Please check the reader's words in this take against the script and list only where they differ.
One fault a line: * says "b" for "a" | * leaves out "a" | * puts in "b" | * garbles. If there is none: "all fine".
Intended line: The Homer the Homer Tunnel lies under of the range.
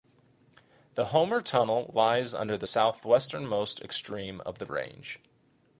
* leaves out "the Homer"
* puts in "the southwesternmost extreme"